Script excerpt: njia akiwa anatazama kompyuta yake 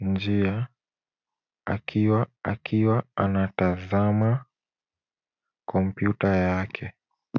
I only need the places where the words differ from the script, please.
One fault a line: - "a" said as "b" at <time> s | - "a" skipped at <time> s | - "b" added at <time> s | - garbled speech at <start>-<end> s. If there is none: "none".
- "akiwa" added at 2.4 s